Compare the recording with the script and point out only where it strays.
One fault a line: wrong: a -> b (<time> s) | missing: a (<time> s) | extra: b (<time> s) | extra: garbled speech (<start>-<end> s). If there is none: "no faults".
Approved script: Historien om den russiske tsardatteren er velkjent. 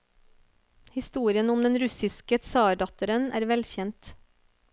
no faults